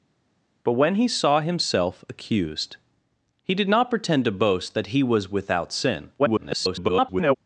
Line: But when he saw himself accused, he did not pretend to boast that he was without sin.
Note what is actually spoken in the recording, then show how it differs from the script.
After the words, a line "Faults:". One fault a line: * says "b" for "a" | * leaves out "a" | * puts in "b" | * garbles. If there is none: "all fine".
But when he saw himself accused, he did not pretend to boast that he was without sin. [garbled]
Faults:
* garbles